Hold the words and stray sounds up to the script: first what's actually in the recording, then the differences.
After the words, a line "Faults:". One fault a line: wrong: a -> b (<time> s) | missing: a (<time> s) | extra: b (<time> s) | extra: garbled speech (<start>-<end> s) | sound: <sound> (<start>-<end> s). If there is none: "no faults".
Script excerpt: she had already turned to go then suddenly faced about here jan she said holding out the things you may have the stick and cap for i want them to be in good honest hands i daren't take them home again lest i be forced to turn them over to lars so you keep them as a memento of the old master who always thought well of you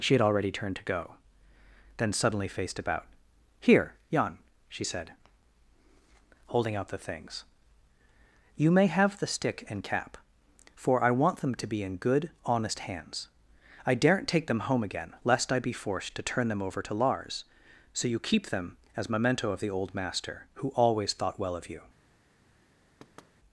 she had already turned to go then suddenly faced about here jan she said holding out the things you may have the stick and cap for i want them to be in good honest hands i daren't take them home again lest i be forced to turn them over to lars so you keep them as memento of the old master who always thought well of you
Faults:
missing: a (19.1 s)
sound: thud (23.0-23.3 s)